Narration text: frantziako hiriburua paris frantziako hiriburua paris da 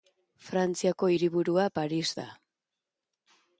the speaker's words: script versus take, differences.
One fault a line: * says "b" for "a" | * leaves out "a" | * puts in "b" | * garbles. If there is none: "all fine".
* leaves out "frantziako hiriburua paris"